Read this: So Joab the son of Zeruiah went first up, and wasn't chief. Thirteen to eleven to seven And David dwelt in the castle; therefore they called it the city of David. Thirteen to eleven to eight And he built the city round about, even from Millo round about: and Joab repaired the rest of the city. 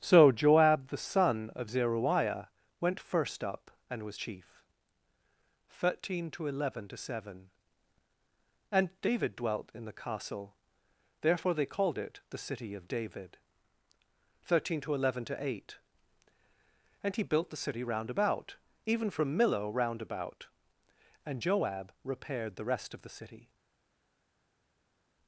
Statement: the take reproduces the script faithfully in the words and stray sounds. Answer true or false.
false